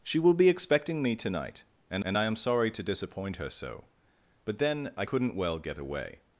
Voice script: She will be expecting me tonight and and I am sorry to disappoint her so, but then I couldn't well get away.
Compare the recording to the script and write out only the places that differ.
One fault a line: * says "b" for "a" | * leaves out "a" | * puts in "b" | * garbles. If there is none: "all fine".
all fine